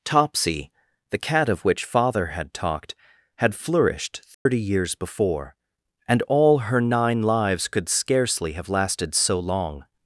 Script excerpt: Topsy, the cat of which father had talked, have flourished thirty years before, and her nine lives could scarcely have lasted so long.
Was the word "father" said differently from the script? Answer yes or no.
no